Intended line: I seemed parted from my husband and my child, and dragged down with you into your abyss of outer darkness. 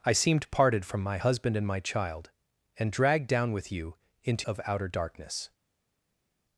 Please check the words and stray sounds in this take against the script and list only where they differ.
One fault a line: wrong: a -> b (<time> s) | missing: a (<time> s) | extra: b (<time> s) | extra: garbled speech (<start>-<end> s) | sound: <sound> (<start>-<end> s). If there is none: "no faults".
missing: your abyss (4.5 s)